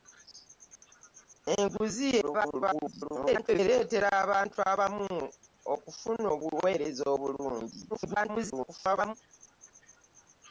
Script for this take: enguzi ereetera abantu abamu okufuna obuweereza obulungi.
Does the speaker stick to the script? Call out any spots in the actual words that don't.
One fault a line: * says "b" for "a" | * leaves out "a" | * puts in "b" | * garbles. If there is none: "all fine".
* garbles
* garbles